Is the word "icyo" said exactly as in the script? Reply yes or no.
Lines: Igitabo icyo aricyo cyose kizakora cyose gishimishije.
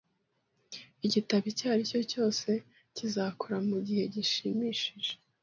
yes